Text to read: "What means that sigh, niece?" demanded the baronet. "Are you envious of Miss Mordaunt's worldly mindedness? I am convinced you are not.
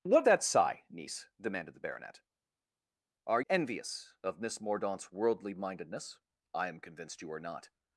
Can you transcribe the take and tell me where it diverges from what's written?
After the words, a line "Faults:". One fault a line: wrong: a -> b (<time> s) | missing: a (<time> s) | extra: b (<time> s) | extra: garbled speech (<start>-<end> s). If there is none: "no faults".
"What that sigh, niece?" demanded the baronet. "Are envious of Miss Mordaunt's worldly mindedness? I am convinced you are not.
Faults:
missing: means (0.3 s)
missing: you (3.4 s)